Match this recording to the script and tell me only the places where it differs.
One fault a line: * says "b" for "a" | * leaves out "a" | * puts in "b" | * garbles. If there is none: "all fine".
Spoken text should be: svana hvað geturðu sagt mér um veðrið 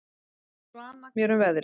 * leaves out "hvað geturðu sagt"